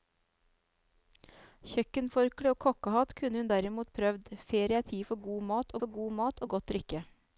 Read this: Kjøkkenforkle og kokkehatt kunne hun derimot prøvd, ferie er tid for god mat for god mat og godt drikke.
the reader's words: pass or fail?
pass